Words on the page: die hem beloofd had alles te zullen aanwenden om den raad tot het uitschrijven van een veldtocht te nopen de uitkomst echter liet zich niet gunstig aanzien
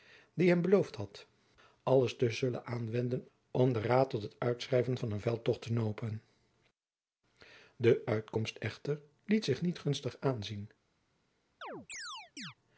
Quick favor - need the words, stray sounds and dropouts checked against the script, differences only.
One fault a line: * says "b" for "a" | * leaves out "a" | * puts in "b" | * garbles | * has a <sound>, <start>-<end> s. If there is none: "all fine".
* has a chirp, 11.6-12.5 s